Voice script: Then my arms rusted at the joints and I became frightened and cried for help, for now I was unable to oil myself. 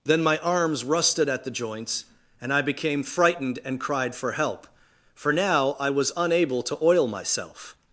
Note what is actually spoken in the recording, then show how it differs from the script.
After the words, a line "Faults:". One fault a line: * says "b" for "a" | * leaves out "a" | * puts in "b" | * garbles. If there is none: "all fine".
Then my arms rusted at the joints and I became frightened and cried for help, for now I was unable to oil myself.
Faults:
all fine